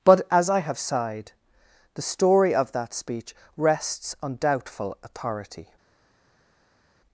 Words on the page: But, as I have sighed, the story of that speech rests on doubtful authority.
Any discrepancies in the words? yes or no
no